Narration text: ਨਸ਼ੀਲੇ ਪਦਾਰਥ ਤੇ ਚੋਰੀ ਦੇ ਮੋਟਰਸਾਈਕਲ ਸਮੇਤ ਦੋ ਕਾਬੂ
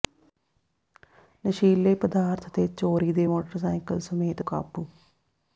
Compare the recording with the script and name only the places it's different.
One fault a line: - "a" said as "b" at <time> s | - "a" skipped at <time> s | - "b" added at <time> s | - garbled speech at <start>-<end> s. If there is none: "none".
- "ਦੋ" skipped at 4.4 s